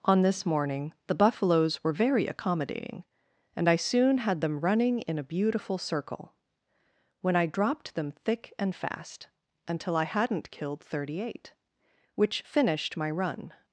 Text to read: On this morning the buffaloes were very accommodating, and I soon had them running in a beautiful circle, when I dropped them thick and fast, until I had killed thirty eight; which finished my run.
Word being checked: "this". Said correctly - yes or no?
yes